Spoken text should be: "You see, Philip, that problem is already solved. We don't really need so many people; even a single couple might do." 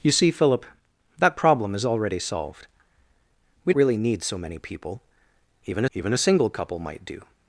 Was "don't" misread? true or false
true